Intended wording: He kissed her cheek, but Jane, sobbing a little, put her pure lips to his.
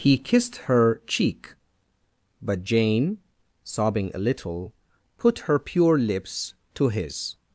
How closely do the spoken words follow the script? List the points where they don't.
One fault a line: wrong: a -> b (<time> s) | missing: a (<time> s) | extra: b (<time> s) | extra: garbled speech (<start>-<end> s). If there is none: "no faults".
no faults